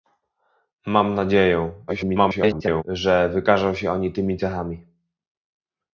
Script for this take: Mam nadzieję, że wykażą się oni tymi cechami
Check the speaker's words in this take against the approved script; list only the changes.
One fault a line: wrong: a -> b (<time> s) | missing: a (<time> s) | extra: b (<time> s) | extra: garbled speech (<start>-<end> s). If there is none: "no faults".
extra: garbled speech (1.9-2.8 s)